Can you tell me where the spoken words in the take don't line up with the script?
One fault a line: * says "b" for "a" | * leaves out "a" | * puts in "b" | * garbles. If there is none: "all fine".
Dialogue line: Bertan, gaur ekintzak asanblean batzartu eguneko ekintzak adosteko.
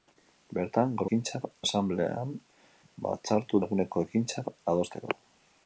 all fine